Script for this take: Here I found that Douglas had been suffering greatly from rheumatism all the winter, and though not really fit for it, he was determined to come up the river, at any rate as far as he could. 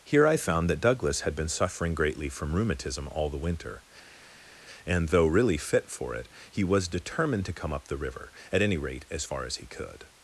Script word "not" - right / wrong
wrong